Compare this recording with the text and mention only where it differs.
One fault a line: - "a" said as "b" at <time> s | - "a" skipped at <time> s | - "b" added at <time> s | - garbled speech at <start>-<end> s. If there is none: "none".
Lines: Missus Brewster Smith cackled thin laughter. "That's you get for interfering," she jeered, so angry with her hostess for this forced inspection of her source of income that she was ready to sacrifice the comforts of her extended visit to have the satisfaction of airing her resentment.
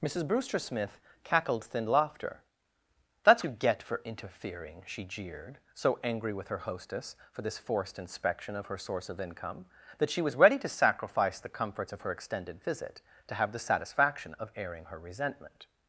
none